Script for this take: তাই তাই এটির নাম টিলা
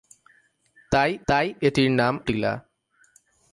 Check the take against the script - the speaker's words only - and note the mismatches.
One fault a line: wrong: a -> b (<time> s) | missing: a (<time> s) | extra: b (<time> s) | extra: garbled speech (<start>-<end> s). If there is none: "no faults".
no faults